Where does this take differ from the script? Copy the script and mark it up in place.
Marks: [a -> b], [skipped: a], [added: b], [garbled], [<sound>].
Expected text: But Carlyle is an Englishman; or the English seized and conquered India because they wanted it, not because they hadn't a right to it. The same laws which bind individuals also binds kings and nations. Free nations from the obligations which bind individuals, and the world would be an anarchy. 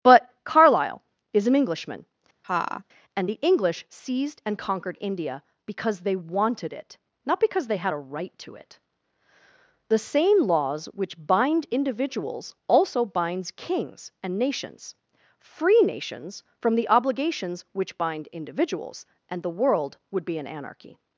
But Carlyle is an Englishman; [laugh] [or -> and] the English seized and conquered India because they wanted it, not because they [hadn't -> had] a right to it. The same laws which bind individuals also binds kings and nations. Free nations from the obligations which bind individuals, and the world would be an anarchy.